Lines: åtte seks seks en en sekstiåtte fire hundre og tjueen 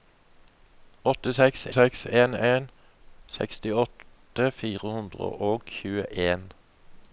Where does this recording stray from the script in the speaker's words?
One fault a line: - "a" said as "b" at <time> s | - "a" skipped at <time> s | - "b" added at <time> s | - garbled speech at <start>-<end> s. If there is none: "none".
none